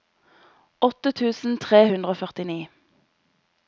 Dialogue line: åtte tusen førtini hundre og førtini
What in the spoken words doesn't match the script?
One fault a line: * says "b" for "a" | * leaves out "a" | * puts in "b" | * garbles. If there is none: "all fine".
* says "tre" for "førtini"